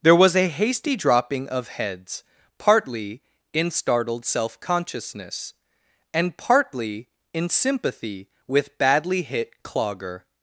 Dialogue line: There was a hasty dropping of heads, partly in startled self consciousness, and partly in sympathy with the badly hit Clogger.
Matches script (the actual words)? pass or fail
fail